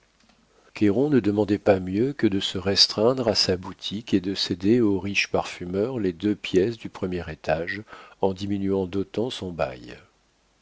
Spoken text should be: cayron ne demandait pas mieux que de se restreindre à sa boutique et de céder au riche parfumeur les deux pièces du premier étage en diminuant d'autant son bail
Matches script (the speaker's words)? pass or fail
pass